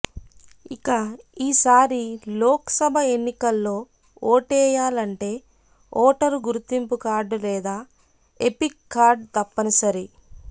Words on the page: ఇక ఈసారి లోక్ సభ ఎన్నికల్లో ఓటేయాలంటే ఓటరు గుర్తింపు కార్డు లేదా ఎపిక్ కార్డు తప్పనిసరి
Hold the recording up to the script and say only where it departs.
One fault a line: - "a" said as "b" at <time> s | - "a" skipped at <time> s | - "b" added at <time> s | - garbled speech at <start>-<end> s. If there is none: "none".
none